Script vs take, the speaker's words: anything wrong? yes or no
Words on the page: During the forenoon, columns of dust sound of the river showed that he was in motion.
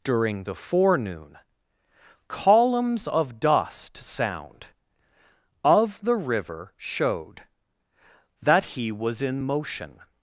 no